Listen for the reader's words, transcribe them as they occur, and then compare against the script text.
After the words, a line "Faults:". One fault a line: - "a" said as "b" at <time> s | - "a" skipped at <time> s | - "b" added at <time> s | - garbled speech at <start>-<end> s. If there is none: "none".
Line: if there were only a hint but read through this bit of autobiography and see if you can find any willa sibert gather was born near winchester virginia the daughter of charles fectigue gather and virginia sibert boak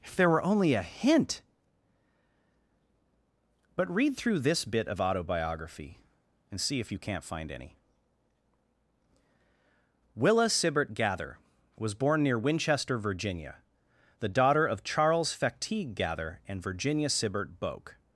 if there were only a hint but read through this bit of autobiography and see if you can't find any willa sibert gather was born near winchester virginia the daughter of charles fectigue gather and virginia sibert boak
Faults:
- "can" said as "can't" at 7.0 s